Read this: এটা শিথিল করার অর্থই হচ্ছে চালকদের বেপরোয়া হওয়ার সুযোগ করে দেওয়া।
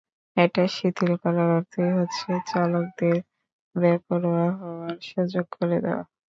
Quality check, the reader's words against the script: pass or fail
pass